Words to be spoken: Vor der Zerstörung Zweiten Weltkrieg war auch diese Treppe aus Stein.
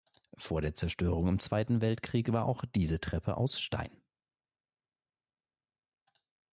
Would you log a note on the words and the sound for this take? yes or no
yes